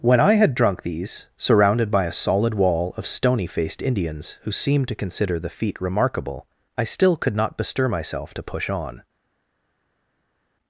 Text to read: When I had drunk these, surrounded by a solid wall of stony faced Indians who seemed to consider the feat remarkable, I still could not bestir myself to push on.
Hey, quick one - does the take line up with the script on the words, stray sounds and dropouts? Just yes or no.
yes